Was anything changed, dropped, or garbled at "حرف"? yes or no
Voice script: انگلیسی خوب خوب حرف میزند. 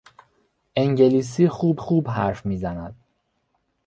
no